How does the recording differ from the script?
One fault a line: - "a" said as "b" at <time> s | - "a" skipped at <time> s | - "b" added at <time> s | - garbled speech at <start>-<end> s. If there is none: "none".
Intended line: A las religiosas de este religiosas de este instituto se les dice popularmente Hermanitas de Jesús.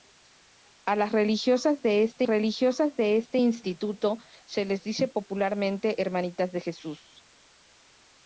none